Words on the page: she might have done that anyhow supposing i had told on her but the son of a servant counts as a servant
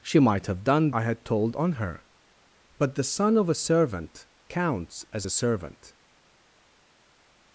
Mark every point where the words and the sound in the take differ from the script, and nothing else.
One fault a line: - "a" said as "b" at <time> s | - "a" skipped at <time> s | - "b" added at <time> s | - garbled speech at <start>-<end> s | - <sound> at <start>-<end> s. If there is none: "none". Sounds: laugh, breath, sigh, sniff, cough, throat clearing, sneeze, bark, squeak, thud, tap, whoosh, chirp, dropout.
- "that anyhow supposing" skipped at 0.9 s